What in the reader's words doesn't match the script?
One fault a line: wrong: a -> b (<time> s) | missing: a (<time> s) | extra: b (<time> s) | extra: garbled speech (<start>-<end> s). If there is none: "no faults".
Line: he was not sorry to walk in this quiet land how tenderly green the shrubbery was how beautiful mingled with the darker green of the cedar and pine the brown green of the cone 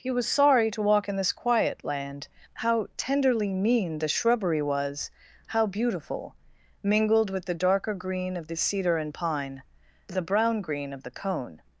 missing: not (0.3 s)
wrong: green -> mean (3.5 s)